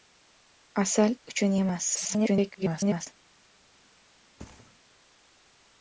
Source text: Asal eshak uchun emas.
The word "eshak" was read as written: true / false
false